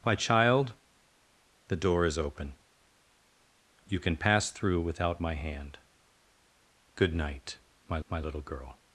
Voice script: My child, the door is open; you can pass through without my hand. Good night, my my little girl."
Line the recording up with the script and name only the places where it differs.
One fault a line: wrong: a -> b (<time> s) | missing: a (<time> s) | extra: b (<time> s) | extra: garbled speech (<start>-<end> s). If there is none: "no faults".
no faults